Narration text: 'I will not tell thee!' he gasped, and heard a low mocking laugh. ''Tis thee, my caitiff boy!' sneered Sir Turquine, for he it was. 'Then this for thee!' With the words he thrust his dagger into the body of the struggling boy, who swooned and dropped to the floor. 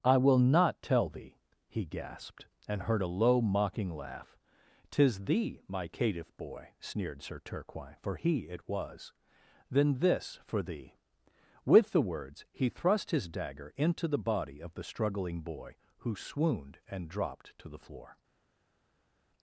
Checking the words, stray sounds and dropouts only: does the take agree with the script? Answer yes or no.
yes